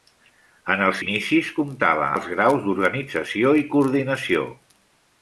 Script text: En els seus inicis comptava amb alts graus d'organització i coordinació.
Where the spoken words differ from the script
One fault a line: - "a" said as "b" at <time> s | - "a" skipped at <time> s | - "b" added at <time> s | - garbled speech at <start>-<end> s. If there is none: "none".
- "seus" skipped at 0.9 s
- "amb" skipped at 2.1 s